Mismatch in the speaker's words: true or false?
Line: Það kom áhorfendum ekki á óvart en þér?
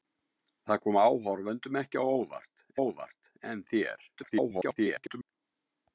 true